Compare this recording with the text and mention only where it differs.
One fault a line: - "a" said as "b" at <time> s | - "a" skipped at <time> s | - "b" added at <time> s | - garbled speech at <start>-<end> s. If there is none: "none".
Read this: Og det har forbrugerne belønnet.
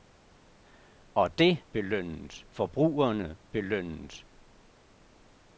- "har" said as "belønnet" at 1.7 s